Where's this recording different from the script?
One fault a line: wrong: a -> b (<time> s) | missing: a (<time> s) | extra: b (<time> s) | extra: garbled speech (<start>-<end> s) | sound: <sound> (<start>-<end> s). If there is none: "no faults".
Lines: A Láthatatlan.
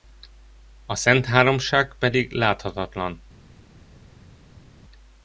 extra: Szentháromság pedig (0.9 s)